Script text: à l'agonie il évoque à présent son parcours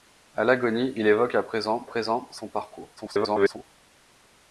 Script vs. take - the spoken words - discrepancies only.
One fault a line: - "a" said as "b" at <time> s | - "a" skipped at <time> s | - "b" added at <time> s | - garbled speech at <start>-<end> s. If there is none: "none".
- "présent" added at 1.9 s
- garbled speech at 3.0-3.6 s